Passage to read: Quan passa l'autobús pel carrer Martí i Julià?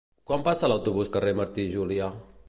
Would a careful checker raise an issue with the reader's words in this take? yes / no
yes